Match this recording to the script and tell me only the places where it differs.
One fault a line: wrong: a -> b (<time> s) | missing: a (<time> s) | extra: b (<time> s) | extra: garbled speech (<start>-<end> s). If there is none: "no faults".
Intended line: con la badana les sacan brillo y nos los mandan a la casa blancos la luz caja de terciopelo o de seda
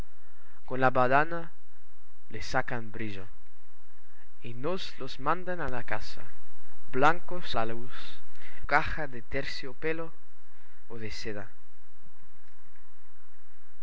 no faults